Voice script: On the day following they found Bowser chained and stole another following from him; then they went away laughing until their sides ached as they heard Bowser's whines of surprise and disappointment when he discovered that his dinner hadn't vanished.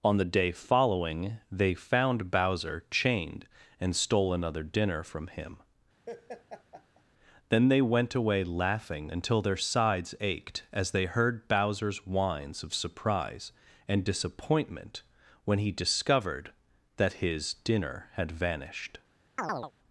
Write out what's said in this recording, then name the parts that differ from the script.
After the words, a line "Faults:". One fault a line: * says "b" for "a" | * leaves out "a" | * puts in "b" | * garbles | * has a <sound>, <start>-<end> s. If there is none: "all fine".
On the day following they found Bowser chained and stole another dinner from him; then they went away laughing until their sides ached as they heard Bowser's whines of surprise and disappointment when he discovered that his dinner had vanished.
Faults:
* says "dinner" for "following"
* has a laugh, 6.1-7.0 s
* says "had" for "hadn't"
* has a chirp, 19.4-19.7 s